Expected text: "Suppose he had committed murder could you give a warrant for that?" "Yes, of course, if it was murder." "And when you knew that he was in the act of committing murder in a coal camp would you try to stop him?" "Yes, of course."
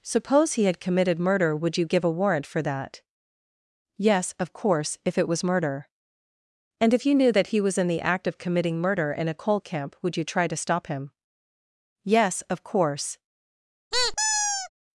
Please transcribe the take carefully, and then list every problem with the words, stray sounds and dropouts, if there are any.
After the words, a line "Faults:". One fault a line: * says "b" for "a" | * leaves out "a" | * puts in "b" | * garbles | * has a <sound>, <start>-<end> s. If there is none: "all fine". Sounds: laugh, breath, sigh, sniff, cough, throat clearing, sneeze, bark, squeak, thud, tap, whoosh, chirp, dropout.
"Suppose he had committed murder would you give a warrant for that?" "Yes, of course, if it was murder." "And if you knew that he was in the act of committing murder in a coal camp would you try to stop him?" "Yes, of course."
Faults:
* says "would" for "could"
* says "if" for "when"
* has a squeak, 13.9-14.7 s